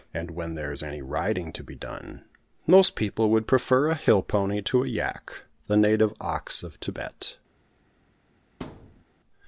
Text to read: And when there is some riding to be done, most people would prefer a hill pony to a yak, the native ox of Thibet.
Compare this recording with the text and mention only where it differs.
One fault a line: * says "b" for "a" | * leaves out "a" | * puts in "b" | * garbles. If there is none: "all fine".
* says "any" for "some"